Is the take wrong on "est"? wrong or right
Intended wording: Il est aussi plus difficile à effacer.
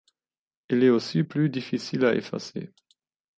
right